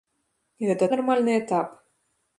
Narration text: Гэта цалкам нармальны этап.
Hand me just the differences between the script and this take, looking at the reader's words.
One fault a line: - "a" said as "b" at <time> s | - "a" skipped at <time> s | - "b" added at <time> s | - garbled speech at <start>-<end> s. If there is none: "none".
- "цалкам" skipped at 0.8 s